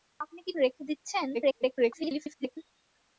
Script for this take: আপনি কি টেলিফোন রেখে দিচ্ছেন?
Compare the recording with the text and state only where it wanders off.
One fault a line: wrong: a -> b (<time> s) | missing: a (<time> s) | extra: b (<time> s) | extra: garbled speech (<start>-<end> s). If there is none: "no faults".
missing: টেলিফোন (0.5 s)
extra: garbled speech (1.3-2.6 s)